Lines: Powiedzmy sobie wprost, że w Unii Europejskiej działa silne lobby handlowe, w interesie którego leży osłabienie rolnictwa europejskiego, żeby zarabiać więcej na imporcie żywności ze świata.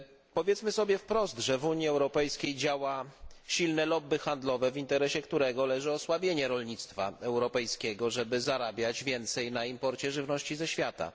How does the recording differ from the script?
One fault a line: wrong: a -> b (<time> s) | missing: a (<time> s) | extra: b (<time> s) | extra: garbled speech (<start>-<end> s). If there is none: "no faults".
no faults